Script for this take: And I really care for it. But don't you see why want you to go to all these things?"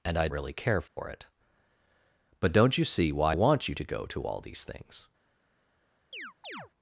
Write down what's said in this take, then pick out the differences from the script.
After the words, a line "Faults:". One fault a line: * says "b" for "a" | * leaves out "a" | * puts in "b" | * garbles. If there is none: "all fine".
And I really care for it. But don't you see why want you to go to all these things?"
Faults:
all fine